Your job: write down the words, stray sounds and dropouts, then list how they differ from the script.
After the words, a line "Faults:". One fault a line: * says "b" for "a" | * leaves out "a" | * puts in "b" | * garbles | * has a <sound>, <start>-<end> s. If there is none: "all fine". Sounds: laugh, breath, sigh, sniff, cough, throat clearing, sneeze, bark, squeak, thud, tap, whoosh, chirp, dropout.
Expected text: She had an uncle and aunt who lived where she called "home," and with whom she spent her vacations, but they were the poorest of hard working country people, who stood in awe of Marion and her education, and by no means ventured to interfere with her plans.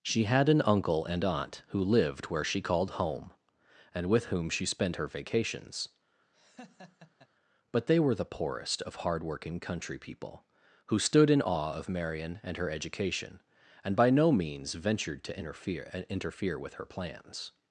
She had an uncle and aunt who lived where she called "home," and with whom she spent her vacations, but they were the poorest of hard working country people, who stood in awe of Marion and her education, and by no means ventured to interfere interfere with her plans.
Faults:
* has a laugh, 6.3-7.3 s
* puts in "interfere"